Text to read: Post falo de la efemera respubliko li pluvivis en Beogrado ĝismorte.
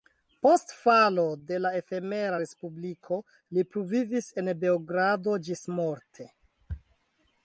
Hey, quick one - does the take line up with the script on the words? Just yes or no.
yes